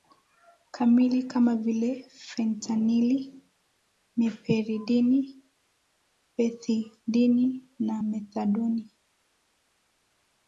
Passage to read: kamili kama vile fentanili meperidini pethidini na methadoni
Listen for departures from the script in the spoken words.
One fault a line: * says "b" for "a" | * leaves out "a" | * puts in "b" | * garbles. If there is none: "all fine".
all fine